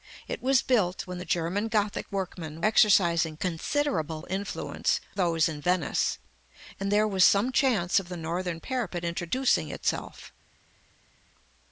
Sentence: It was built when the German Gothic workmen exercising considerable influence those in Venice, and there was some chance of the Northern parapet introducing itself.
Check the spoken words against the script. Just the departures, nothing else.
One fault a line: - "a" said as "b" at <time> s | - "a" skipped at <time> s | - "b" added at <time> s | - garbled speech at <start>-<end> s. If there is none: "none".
none